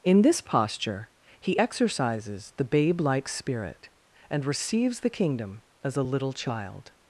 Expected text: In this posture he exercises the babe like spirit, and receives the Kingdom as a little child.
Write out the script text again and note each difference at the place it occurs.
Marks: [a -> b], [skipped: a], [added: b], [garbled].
In this posture he exercises the babe like spirit, and receives the Kingdom as a little child.